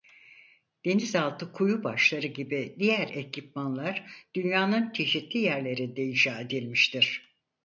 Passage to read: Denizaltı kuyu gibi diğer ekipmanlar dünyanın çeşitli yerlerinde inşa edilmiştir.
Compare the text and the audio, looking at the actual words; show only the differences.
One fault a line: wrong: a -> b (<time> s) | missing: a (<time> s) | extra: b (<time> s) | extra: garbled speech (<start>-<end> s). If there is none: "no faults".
extra: başları (1.8 s)